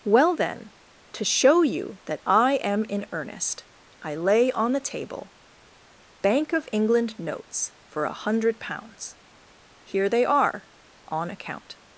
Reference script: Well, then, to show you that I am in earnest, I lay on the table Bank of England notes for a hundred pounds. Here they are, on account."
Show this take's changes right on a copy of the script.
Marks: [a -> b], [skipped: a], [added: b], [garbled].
Well, then, to show you that I am in earnest, I lay on the table Bank of England notes for a hundred pounds. Here they are, on account."